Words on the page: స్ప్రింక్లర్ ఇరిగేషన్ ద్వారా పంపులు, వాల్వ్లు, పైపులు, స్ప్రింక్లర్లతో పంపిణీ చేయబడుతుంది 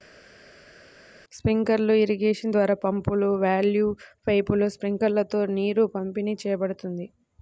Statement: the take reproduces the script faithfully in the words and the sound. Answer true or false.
false